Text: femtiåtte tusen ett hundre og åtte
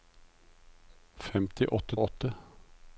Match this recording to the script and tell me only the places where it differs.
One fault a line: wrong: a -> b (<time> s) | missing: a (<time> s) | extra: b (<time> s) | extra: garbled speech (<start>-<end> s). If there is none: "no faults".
missing: tusen ett hundre (2.0 s)